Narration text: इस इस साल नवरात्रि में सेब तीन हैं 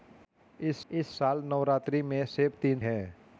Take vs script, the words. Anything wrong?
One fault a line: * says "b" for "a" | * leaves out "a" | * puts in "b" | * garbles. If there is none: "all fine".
all fine